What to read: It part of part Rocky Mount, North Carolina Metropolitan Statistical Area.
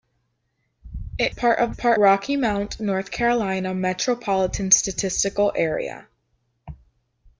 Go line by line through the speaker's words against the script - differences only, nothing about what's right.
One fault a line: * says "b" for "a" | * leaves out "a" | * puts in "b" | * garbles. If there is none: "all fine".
all fine